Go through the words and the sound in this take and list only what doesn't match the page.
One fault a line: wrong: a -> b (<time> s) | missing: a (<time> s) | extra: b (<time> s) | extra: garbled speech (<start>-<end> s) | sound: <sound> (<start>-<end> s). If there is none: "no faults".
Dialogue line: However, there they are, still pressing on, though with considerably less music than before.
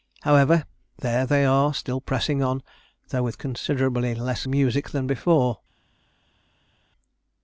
no faults